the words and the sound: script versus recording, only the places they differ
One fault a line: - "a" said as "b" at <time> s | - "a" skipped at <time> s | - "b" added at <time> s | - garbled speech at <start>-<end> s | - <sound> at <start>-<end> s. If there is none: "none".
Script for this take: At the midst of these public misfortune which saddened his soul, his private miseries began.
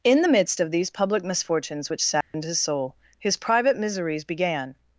- "At" said as "In" at 0.0 s
- "misfortune" said as "misfortunes" at 1.2 s
- dropout at 2.2-2.3 s